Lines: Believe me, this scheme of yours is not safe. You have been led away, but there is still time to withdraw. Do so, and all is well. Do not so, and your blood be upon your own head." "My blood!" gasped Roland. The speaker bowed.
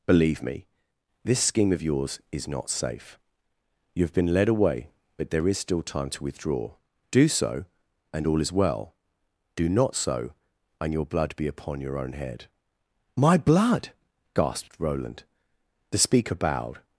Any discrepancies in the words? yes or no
no